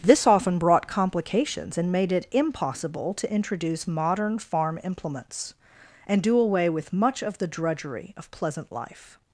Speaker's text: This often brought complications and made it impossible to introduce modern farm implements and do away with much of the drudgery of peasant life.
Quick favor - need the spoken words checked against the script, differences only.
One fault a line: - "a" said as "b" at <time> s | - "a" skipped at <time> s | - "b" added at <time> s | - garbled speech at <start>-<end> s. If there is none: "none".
- "peasant" said as "pleasant" at 8.3 s